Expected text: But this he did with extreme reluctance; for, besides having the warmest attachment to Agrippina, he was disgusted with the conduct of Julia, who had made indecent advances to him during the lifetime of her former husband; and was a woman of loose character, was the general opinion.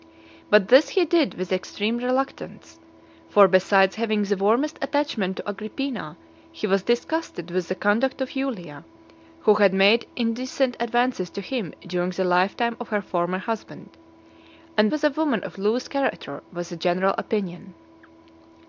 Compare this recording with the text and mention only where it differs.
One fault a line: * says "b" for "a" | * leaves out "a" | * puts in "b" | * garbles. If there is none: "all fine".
all fine